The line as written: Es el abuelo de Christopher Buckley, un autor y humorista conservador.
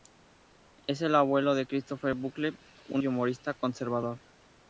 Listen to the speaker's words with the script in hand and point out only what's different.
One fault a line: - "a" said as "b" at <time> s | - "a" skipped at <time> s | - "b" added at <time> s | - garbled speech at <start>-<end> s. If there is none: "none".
- "autor" skipped at 3.0 s